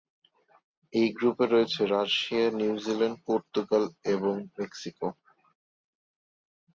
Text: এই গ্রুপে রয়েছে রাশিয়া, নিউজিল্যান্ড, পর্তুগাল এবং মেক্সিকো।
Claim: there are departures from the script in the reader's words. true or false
false